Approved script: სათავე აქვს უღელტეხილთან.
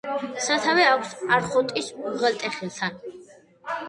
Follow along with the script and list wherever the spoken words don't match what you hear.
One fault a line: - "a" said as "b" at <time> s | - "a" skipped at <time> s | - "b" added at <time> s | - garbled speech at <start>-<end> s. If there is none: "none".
- "არხოტის" added at 1.4 s